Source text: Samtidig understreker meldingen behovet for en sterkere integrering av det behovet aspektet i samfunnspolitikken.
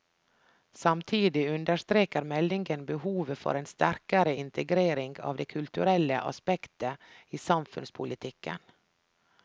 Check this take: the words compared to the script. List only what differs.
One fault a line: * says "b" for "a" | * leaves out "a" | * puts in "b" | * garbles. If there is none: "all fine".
* says "kulturelle" for "behovet"